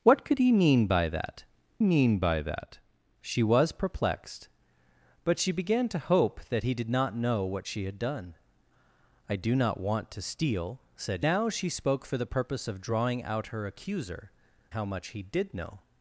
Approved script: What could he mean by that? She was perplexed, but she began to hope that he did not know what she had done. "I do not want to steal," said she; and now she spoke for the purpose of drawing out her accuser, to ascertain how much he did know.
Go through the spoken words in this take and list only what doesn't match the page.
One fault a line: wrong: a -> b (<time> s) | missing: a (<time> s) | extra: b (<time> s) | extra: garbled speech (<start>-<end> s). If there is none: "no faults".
extra: mean by that (1.8 s)
missing: she and (11.3 s)
missing: to ascertain (14.3 s)